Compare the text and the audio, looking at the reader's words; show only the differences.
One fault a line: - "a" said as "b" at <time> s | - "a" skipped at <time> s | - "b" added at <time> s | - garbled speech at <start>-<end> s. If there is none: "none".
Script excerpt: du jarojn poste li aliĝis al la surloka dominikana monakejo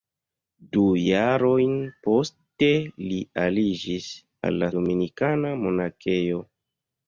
- "surloka" skipped at 4.7 s